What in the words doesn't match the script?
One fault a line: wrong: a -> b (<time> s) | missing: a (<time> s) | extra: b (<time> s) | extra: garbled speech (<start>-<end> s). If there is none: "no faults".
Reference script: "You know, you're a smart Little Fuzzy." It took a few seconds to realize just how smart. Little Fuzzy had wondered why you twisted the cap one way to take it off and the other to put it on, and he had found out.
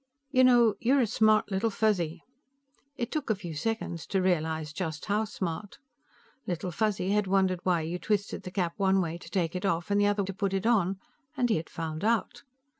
no faults